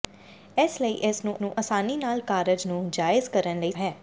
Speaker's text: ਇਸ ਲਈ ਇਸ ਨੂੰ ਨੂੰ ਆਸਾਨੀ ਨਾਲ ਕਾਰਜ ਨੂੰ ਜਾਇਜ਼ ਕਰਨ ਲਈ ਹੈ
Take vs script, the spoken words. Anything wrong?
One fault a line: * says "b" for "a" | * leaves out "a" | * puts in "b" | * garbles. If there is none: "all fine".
all fine